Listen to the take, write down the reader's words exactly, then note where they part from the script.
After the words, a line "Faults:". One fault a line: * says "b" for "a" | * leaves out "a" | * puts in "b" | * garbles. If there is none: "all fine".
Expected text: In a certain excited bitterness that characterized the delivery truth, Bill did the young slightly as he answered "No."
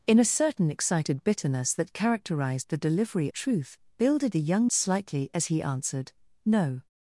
In a certain excited bitterness that characterized the delivery truth, Bill did the young slightly as he answered "No."
Faults:
all fine